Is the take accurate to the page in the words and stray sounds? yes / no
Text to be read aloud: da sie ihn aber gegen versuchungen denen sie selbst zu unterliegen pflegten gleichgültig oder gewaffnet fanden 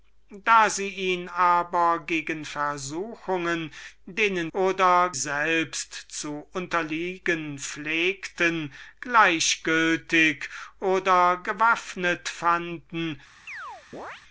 no